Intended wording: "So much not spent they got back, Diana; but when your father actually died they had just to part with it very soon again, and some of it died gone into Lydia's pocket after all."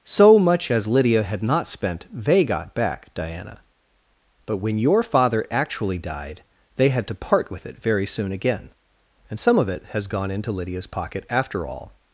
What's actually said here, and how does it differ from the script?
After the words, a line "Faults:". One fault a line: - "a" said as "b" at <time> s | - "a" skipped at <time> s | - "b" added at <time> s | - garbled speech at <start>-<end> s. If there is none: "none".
"So much as Lydia had not spent they got back, Diana; but when your father actually died they had to part with it very soon again, and some of it has gone into Lydia's pocket after all."
Faults:
- "as Lydia had" added at 0.7 s
- "just" skipped at 7.1 s
- "died" said as "has" at 9.9 s